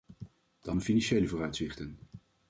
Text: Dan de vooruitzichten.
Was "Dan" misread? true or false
false